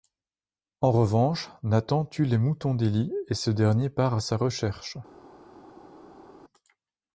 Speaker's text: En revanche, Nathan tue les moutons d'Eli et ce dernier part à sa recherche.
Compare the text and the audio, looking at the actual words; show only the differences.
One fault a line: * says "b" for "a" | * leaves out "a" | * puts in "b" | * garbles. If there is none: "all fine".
all fine